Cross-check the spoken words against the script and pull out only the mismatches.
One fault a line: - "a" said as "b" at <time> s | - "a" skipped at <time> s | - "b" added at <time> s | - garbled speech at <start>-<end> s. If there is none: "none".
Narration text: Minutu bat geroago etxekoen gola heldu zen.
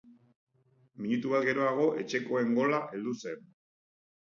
none